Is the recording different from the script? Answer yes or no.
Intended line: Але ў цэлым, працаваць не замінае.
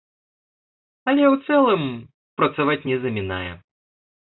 no